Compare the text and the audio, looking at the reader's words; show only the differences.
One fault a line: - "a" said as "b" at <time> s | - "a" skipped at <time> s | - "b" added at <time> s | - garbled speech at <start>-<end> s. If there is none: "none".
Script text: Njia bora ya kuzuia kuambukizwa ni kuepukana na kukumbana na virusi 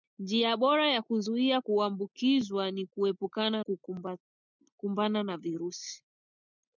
- "na" skipped at 3.6 s